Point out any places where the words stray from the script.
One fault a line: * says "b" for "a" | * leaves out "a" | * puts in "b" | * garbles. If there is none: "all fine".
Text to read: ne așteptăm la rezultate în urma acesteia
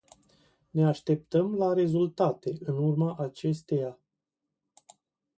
all fine